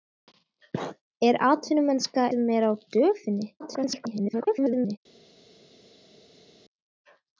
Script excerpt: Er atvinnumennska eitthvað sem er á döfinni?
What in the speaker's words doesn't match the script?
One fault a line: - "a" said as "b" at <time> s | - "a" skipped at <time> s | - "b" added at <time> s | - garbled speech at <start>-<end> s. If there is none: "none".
- "eitthvað" skipped at 2.2 s
- garbled speech at 3.6-5.0 s